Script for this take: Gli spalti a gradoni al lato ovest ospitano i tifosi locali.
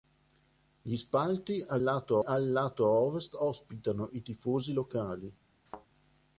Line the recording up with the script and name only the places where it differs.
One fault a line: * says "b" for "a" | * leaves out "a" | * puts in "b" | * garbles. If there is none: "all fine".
* says "lato" for "gradoni"